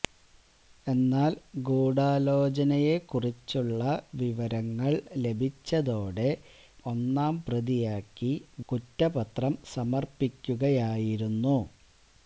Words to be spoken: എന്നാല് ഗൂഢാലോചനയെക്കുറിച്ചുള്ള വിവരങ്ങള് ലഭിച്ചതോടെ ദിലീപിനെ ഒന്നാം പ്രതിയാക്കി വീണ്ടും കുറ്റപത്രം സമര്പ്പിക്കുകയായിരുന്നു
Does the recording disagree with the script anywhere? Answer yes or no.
yes